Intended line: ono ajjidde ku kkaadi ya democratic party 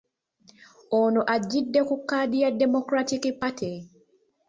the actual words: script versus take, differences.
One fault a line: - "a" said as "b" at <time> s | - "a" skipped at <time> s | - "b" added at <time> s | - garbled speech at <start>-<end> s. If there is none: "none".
none